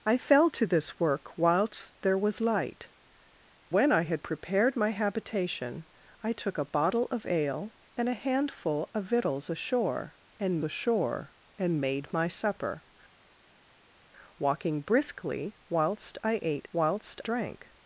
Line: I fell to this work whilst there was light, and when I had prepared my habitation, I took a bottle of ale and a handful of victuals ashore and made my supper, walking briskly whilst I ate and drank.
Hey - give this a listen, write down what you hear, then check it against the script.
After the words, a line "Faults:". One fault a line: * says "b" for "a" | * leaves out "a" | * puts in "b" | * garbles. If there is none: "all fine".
I fell to this work whilst there was light, when I had prepared my habitation, I took a bottle of ale and a handful of victuals ashore and ashore and made my supper, walking briskly whilst I ate whilst drank.
Faults:
* leaves out "and"
* puts in "ashore and"
* says "whilst" for "and"